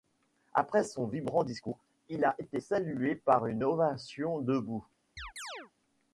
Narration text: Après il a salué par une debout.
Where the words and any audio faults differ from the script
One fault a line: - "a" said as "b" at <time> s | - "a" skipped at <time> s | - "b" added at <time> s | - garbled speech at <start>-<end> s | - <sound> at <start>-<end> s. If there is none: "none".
- "son vibrant discours" added at 0.8 s
- "été" added at 2.4 s
- "ovation" added at 3.6 s
- chirp at 5.2-5.7 s